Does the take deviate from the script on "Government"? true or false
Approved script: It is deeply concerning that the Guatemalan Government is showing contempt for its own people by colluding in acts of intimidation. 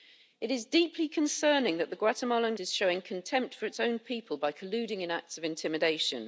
true